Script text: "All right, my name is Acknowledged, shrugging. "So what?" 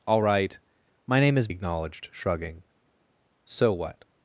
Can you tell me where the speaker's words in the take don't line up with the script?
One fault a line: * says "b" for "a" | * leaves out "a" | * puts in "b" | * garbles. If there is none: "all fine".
all fine